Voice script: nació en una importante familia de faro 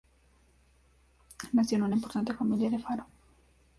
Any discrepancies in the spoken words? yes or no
no